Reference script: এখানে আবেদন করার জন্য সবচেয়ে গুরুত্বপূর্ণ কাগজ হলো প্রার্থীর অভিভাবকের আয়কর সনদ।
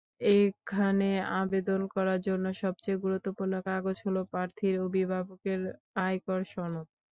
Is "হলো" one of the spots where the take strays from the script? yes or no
no